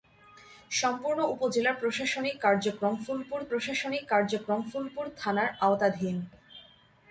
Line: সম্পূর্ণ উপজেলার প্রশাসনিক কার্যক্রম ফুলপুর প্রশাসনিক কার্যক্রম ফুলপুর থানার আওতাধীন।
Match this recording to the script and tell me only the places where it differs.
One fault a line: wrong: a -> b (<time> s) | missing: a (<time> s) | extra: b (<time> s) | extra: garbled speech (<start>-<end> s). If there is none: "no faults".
no faults